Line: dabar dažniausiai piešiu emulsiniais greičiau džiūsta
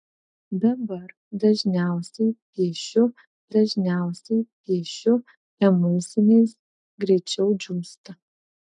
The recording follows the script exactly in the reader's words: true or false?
false